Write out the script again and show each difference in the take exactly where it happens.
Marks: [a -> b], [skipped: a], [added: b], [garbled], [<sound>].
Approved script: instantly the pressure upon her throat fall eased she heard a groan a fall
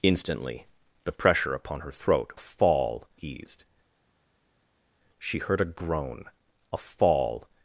instantly the pressure upon her throat fall eased she heard a groan a fall